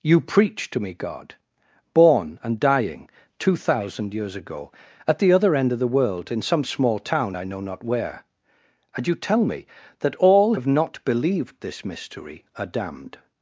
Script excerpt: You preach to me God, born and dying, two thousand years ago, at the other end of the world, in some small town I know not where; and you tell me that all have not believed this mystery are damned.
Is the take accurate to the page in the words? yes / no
yes